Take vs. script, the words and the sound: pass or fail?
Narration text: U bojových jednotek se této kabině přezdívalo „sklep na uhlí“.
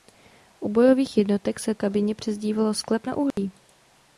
fail